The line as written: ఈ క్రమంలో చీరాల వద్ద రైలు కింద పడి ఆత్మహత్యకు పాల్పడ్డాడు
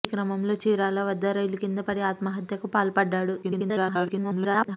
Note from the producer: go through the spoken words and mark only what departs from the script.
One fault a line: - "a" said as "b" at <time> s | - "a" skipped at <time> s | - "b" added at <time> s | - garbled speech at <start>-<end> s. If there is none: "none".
- garbled speech at 3.4-4.8 s